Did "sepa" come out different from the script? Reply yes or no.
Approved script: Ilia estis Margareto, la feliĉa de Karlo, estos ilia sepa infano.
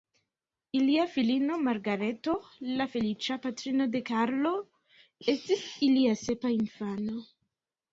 no